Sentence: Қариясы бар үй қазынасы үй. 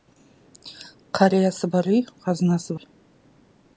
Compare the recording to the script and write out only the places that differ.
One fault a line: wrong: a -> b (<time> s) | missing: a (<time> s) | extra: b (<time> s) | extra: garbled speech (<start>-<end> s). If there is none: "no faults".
no faults